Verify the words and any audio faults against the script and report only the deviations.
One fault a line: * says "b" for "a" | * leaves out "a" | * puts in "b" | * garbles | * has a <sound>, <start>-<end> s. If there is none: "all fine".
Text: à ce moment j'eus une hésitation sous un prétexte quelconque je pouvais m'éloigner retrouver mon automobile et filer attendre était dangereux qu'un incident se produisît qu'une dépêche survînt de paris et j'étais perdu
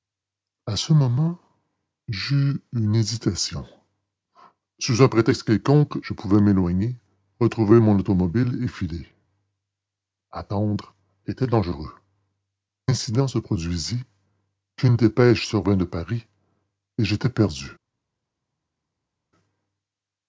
* leaves out "qu'un"